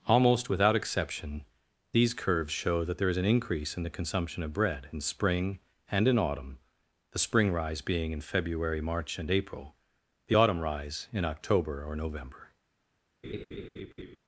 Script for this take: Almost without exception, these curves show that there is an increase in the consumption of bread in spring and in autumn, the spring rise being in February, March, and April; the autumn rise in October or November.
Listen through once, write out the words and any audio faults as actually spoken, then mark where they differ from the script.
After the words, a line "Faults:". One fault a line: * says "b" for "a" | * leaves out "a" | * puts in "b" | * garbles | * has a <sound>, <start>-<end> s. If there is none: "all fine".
Almost without exception, these curves show that there is an increase in the consumption of bread in spring and in autumn, the spring rise being in February, March, and April; the autumn rise in October or November.
Faults:
* has a laugh, 13.2-14.2 s